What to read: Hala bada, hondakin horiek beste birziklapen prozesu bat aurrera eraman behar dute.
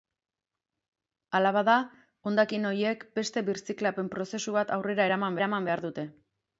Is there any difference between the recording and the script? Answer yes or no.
yes